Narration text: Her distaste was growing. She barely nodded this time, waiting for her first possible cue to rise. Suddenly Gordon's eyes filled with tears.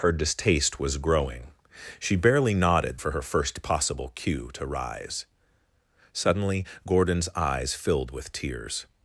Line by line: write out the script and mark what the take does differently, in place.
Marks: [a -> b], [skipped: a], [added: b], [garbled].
Her distaste was growing. She barely nodded [skipped: this time, waiting] for her first possible cue to rise. Suddenly Gordon's eyes filled with tears.